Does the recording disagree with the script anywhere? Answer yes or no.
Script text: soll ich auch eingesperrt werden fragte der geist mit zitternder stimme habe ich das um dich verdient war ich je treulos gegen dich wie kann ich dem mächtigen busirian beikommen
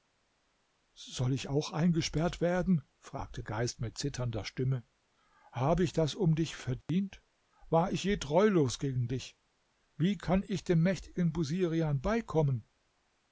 yes